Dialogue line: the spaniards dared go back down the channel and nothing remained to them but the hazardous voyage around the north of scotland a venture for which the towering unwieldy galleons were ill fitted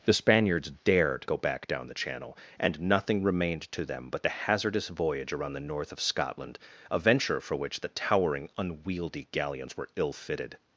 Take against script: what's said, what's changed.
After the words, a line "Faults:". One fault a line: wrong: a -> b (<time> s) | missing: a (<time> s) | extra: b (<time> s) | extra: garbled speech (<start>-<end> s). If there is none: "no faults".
the spaniards dared go back down the channel and nothing remained to them but the hazardous voyage around the north of scotland a venture for which the towering unwieldy galleons were ill fitted
Faults:
no faults